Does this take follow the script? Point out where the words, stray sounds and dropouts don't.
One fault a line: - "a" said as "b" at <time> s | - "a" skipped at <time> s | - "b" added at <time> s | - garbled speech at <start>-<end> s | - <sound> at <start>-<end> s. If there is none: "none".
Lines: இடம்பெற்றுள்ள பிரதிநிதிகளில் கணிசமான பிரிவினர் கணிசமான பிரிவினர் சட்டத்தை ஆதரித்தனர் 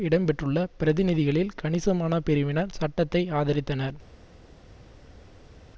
- "கணிசமான பிரிவினர்" skipped at 2.7 s